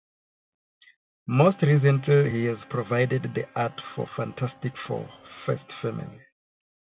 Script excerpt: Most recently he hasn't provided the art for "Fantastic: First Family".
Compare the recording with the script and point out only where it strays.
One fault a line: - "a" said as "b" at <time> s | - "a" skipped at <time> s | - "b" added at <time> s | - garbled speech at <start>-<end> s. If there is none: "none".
- "hasn't" said as "has" at 2.4 s
- "Four" added at 4.9 s